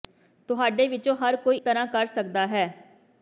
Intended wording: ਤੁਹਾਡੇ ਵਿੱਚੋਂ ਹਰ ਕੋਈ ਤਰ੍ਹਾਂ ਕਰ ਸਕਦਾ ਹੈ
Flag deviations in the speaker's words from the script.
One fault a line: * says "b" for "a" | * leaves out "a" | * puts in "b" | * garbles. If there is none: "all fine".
all fine